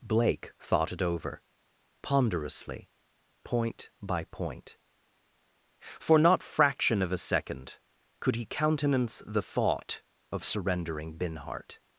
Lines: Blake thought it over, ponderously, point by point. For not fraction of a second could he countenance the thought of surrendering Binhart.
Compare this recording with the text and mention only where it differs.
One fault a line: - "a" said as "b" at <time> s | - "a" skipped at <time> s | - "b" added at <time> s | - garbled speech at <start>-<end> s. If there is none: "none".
none